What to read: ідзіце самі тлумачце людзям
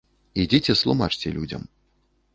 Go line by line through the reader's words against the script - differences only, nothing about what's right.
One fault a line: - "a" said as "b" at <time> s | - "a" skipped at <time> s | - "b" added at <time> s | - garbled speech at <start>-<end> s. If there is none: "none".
- "самі" skipped at 0.8 s